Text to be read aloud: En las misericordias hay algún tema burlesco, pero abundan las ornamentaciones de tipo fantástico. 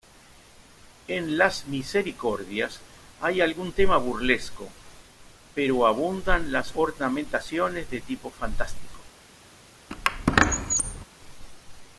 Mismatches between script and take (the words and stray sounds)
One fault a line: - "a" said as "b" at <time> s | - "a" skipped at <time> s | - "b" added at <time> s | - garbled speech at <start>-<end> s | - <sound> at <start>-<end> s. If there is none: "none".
- squeak at 9.9-11.1 s